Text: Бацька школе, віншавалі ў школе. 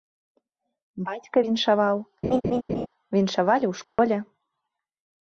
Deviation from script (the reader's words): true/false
true